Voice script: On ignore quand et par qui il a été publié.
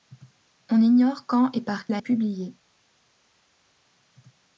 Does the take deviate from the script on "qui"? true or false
true